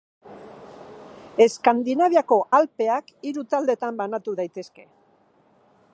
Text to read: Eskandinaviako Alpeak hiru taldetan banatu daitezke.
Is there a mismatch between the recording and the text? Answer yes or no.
no